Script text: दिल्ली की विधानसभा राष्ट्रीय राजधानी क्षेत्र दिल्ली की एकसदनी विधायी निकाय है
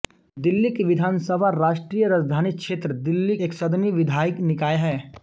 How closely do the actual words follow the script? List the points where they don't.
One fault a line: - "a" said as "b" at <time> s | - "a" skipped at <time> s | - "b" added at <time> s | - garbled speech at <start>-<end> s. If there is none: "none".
- "की" skipped at 3.4 s